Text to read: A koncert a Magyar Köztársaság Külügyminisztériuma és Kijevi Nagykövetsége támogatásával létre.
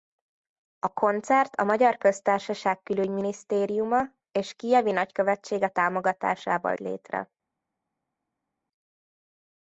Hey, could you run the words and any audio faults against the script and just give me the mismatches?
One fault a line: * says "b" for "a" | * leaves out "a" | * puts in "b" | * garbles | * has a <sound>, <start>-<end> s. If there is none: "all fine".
all fine